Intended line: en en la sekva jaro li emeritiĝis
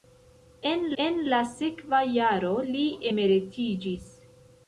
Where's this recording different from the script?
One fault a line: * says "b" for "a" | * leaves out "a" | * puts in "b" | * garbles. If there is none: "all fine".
all fine